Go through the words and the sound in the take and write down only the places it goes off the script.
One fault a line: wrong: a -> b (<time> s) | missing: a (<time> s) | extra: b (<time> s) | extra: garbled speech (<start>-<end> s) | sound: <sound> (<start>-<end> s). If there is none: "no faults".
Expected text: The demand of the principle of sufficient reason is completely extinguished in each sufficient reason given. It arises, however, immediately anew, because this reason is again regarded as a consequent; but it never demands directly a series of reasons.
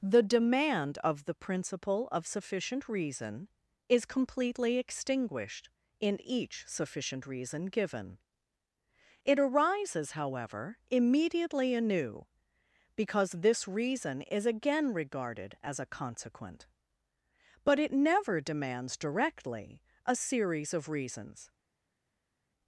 no faults